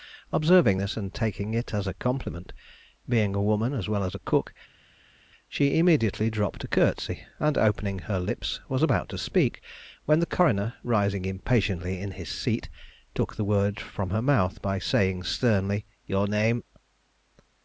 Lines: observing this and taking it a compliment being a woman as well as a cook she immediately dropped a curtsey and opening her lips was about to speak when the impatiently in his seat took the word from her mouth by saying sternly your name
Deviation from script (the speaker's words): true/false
true